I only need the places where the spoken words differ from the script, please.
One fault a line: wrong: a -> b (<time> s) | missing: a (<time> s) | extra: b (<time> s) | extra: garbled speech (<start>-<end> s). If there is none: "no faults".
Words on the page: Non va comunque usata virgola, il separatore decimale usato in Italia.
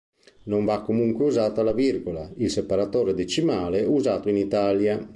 extra: la (1.6 s)